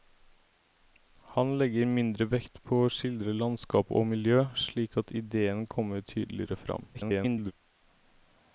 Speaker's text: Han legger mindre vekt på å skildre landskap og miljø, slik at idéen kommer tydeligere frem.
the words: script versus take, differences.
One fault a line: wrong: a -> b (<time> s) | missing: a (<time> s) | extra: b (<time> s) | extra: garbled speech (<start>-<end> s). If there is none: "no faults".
extra: garbled speech (6.9-7.5 s)